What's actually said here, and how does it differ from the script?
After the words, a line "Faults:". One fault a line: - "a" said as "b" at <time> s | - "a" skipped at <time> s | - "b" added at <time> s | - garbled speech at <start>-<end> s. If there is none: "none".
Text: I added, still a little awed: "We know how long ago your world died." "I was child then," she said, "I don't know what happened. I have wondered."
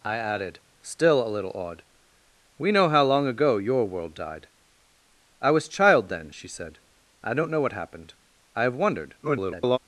I added, still a little awed: "We know how long ago your world died." "I was child then," she said, "I don't know what happened. I have wondered." [garbled]
Faults:
- garbled speech at 9.2-9.8 s